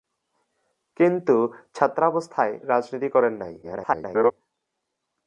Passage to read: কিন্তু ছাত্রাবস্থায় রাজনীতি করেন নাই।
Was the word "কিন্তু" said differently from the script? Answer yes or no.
no